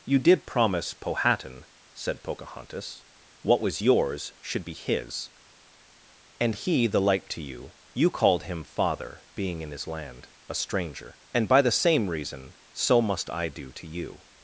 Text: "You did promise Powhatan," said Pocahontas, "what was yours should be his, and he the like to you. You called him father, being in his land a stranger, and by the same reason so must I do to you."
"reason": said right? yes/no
yes